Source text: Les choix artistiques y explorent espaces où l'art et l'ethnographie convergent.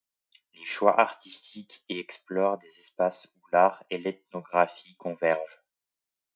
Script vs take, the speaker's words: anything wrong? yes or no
yes